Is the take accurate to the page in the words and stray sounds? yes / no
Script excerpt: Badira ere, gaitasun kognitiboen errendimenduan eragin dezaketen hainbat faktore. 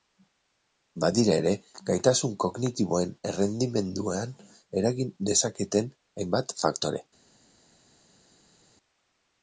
yes